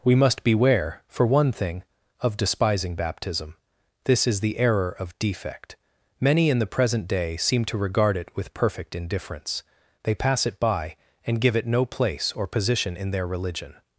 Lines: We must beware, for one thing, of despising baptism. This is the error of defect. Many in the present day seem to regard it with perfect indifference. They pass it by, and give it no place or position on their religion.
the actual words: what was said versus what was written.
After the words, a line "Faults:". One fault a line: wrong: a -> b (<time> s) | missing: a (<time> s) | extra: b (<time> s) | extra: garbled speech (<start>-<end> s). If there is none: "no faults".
We must beware, for one thing, of despising baptism. This is the error of defect. Many in the present day seem to regard it with perfect indifference. They pass it by, and give it no place or position in their religion.
Faults:
wrong: on -> in (13.0 s)